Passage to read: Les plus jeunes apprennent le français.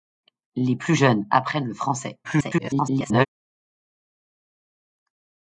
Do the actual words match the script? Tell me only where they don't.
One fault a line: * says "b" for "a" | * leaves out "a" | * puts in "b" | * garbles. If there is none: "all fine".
* garbles